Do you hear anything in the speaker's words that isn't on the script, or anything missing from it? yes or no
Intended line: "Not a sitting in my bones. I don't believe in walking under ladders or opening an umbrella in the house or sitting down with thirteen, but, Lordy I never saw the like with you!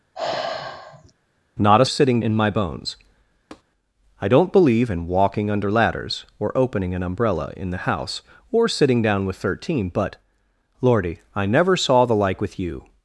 no